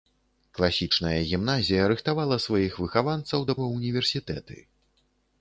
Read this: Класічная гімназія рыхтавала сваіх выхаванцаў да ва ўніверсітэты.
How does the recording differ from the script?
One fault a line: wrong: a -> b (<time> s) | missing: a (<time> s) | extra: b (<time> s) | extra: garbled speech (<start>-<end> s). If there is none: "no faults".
no faults